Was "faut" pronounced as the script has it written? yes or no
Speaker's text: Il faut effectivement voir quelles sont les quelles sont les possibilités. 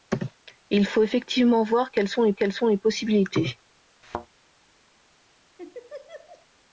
yes